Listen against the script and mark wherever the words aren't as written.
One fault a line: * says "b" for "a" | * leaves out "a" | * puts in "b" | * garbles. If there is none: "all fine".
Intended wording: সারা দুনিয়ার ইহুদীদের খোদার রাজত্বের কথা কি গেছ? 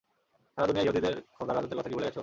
* puts in "ভুলে"